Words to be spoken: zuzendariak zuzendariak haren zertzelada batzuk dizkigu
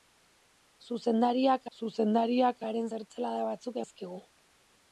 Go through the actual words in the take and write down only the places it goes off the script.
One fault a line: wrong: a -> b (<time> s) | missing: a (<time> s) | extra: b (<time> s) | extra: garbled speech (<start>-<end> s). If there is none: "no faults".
no faults